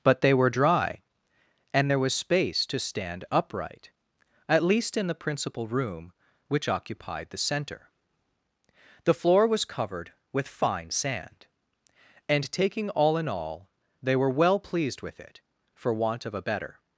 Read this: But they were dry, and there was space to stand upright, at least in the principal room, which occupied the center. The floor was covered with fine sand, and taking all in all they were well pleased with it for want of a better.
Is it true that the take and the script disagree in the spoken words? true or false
false